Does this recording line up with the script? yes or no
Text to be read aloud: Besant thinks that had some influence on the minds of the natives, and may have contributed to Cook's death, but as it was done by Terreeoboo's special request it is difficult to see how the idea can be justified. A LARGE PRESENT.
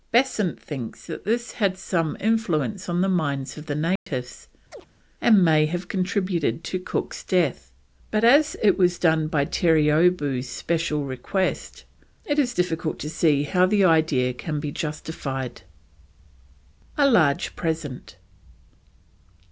no